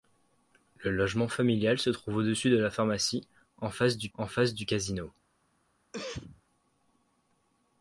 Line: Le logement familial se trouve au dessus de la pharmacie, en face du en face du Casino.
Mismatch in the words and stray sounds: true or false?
true